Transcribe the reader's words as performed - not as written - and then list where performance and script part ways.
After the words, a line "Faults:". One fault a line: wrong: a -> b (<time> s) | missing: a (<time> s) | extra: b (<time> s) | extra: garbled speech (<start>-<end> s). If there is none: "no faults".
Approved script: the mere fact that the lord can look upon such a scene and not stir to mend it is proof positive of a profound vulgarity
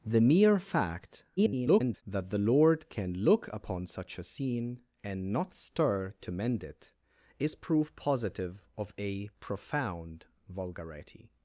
the mere fact [garbled] that the lord can look upon such a scene and not stir to mend it is proof positive of a profound vulgarity
Faults:
extra: garbled speech (1.4-2.0 s)